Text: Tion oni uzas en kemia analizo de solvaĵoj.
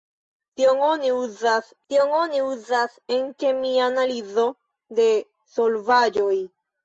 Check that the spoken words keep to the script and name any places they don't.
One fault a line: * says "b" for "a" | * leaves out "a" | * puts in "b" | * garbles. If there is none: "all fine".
* puts in "tion oni uzas"